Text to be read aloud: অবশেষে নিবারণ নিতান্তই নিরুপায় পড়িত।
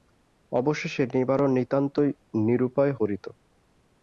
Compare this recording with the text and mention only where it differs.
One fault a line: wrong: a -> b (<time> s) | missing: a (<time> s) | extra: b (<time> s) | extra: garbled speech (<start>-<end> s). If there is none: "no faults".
no faults